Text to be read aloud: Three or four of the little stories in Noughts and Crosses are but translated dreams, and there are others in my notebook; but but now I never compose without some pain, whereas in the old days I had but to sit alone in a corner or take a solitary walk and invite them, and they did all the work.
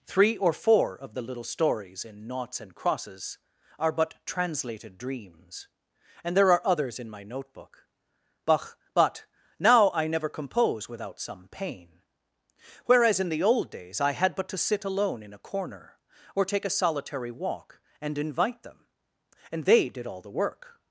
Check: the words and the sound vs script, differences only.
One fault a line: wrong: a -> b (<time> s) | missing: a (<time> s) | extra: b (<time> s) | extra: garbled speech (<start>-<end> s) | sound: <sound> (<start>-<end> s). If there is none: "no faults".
no faults